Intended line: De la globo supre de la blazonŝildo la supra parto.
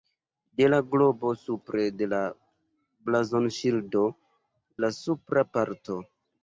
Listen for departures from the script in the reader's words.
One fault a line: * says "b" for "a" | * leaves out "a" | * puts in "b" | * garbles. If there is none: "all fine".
all fine